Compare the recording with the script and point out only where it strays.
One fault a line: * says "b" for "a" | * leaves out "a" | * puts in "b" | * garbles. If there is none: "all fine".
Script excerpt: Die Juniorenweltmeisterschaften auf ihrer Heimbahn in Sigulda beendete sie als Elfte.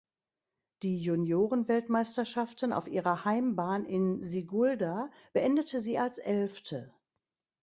all fine